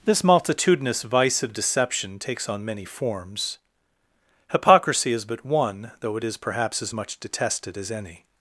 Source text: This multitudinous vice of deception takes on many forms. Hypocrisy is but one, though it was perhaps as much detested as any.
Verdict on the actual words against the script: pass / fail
fail